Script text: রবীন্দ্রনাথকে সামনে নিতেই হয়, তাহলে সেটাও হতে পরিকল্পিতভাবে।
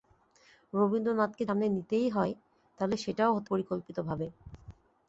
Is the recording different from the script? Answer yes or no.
no